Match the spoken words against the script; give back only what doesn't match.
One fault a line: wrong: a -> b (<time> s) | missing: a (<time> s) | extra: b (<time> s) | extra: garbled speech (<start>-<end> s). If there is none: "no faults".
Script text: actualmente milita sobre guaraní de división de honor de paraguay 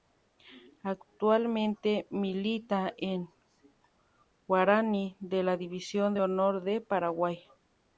wrong: sobre -> en (3.0 s)
extra: la (5.4 s)